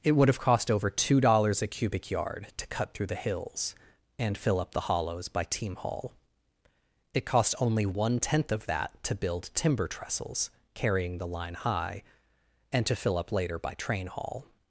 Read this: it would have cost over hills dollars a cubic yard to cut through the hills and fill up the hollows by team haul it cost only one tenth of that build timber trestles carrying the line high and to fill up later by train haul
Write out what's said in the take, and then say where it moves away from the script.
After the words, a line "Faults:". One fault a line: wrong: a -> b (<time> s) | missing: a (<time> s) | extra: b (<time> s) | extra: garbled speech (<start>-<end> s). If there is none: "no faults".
it would have cost over two dollars a cubic yard to cut through the hills and fill up the hollows by team haul it cost only one tenth of that to build timber trestles carrying the line high and to fill up later by train haul
Faults:
wrong: hills -> two (0.9 s)
extra: to (9.0 s)